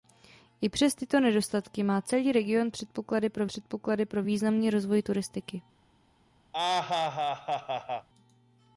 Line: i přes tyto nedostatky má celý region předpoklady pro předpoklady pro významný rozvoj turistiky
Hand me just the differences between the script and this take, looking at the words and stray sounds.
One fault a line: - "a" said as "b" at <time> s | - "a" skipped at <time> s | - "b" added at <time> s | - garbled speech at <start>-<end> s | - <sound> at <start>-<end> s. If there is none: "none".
- laugh at 6.5-8.1 s